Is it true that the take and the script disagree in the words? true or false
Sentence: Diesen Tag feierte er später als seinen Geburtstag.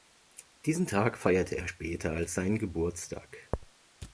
false